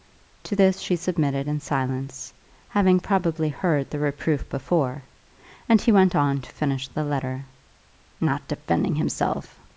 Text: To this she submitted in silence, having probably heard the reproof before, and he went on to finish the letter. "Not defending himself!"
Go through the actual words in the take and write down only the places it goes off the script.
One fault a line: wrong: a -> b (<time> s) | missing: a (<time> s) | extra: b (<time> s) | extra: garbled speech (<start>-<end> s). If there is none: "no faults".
no faults